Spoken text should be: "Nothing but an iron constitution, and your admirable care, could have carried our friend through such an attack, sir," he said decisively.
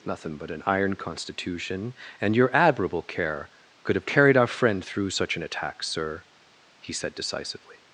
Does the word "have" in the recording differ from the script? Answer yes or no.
no